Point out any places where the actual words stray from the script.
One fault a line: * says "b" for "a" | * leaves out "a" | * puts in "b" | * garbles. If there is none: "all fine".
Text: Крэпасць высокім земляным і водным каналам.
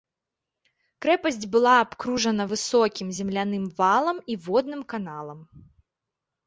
* puts in "была абкружана"
* puts in "валам"